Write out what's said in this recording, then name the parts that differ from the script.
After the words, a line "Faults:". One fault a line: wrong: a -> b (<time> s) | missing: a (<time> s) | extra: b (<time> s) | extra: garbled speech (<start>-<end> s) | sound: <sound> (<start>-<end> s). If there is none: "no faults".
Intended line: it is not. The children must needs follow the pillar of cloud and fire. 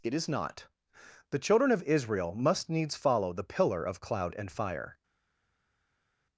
it is not. The children of Israel must needs follow the pillar of cloud and fire.
Faults:
extra: of Israel (1.7 s)